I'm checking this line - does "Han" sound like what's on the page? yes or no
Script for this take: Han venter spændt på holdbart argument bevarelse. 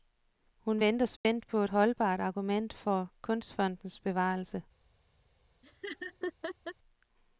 no